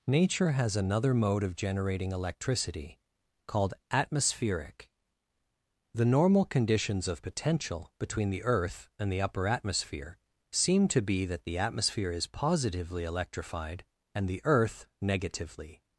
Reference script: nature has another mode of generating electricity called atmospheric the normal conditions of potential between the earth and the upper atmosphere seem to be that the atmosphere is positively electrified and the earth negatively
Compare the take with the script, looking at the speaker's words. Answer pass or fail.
pass